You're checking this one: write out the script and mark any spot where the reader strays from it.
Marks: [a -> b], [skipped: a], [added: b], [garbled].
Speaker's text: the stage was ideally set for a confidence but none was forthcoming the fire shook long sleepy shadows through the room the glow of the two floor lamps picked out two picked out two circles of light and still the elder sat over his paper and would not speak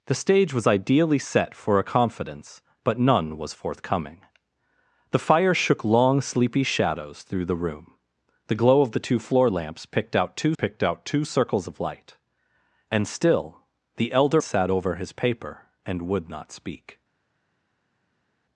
the stage was ideally set for a confidence but none was forthcoming the fire shook long sleepy shadows through the room the glow of the two floor lamps picked out two picked out two circles of light and still the elder sat over his paper and would not speak